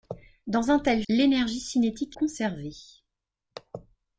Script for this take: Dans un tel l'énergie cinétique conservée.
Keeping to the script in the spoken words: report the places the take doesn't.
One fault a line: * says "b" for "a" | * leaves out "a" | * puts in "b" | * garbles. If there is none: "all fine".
all fine